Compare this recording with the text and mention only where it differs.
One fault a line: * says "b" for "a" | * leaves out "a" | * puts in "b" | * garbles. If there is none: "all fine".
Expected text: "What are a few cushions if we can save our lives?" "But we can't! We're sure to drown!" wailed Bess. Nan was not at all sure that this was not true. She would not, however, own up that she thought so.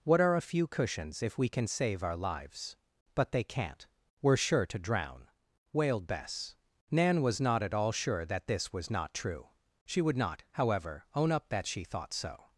* says "they" for "we"